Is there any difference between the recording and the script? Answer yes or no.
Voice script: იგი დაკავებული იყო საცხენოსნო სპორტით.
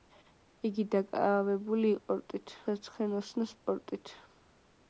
yes